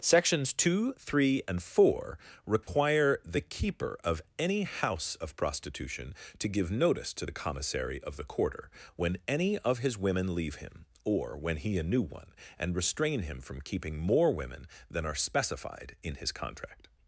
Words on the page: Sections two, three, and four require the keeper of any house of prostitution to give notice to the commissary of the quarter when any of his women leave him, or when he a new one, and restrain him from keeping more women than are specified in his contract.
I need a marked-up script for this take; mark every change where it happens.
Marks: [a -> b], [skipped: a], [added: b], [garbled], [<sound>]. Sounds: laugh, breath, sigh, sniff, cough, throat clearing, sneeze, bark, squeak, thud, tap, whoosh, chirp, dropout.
Sections two, three, and four require [dropout] the keeper of any house of prostitution to give notice to the commissary of the quarter when any of his women leave him, or when he a new one, and restrain him from keeping more women than are specified in his contract.